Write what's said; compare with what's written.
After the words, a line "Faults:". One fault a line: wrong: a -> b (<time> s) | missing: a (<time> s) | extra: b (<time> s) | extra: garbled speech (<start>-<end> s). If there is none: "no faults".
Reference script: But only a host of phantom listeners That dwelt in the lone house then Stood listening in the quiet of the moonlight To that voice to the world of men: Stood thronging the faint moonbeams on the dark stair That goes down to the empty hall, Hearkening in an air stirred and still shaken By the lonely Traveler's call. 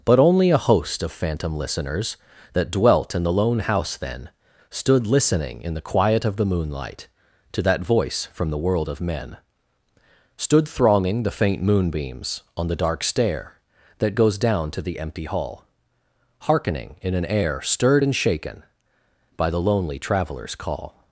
But only a host of phantom listeners That dwelt in the lone house then Stood listening in the quiet of the moonlight To that voice from the world of men: Stood thronging the faint moonbeams on the dark stair That goes down to the empty hall, Hearkening in an air stirred and shaken By the lonely Traveler's call.
Faults:
wrong: to -> from (8.3 s)
missing: still (18.1 s)